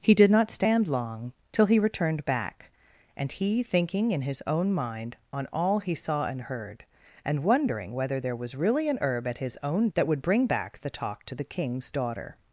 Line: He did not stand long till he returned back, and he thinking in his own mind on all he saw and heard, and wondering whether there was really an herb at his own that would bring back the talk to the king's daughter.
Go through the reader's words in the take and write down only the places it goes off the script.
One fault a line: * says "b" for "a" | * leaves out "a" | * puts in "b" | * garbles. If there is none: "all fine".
all fine